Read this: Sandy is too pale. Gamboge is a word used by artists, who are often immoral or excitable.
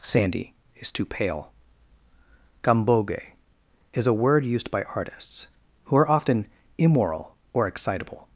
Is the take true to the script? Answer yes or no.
yes